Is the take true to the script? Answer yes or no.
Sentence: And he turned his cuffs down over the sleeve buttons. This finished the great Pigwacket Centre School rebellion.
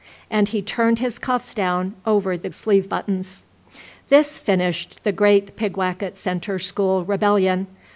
yes